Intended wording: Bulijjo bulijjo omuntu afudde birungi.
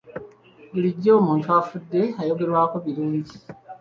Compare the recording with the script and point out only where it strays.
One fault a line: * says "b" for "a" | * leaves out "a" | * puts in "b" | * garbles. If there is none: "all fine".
* leaves out "bulijjo"
* puts in "ayogerwako"